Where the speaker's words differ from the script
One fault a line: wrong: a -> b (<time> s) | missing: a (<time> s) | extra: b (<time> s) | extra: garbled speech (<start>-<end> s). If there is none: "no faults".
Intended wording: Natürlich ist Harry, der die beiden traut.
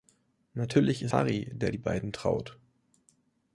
no faults